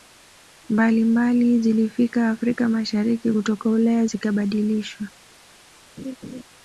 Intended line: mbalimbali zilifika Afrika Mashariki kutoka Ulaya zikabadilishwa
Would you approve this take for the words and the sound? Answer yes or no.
no